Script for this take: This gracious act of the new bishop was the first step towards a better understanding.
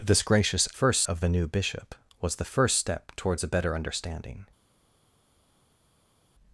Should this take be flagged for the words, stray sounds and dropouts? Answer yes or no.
yes